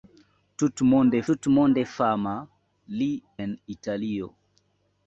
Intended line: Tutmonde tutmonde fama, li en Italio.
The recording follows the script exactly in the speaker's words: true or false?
true